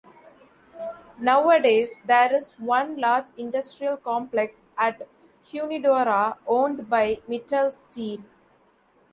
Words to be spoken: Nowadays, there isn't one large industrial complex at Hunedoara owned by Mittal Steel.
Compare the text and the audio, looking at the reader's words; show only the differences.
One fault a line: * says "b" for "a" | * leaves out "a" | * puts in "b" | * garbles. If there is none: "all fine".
* says "is" for "isn't"